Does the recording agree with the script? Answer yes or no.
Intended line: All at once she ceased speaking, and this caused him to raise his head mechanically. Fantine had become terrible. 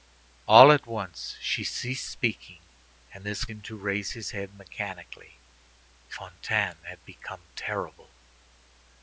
no